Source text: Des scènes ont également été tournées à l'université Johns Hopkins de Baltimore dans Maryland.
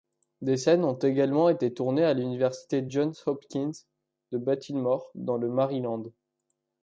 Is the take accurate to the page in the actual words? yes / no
no